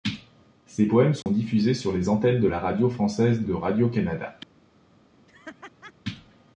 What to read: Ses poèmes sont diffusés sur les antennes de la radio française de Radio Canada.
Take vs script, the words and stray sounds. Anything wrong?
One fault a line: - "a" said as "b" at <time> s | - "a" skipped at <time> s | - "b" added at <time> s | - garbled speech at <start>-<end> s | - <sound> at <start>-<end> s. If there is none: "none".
- dropout at 1.2-1.3 s
- laugh at 5.3-5.9 s